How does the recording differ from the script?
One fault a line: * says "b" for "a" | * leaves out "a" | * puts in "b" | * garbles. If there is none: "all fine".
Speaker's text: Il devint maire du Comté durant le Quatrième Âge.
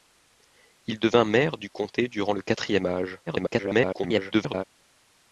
* garbles